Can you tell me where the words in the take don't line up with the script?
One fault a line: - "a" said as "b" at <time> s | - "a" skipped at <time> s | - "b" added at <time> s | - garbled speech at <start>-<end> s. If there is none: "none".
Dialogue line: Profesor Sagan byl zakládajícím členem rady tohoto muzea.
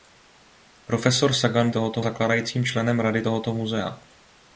- "byl" said as "tohoto" at 1.7 s